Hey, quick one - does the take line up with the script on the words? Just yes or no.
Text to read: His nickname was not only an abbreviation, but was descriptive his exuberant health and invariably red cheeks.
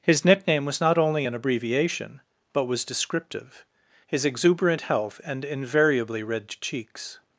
yes